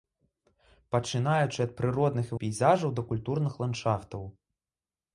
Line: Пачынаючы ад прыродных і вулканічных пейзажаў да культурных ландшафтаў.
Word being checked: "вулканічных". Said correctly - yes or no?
no